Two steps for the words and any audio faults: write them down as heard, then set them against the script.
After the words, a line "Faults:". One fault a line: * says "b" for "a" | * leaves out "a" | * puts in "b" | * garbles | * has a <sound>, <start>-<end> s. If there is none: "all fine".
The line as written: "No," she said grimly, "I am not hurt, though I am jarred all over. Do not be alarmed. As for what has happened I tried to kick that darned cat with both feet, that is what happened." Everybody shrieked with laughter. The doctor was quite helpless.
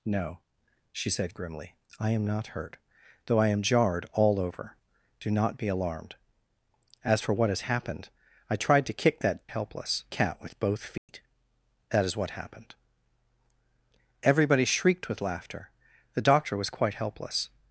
"No," she said grimly, "I am not hurt, though I am jarred all over. Do not be alarmed. As for what has happened I tried to kick that helpless cat with both feet, that is what happened." Everybody shrieked with laughter. The doctor was quite helpless.
Faults:
* says "helpless" for "darned"
* has a dropout, 11.0-11.1 s